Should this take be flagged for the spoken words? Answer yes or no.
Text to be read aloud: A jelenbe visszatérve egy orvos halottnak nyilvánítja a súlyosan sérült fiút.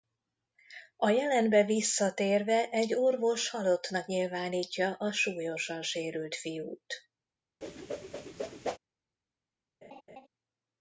no